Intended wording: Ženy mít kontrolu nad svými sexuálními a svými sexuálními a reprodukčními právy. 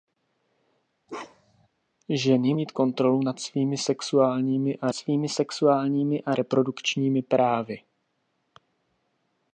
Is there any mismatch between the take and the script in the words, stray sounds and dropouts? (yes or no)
yes